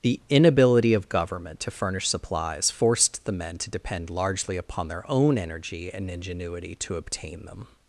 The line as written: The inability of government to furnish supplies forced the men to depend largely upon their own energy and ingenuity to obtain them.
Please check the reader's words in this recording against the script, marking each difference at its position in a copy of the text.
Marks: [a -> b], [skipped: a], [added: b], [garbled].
The inability of government to furnish supplies forced the men to depend largely upon their own energy and ingenuity to obtain them.